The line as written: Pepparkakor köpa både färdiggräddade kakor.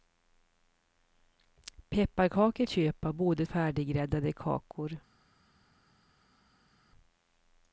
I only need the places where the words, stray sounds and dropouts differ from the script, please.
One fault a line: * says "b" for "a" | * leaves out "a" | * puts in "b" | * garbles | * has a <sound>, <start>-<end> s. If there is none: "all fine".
all fine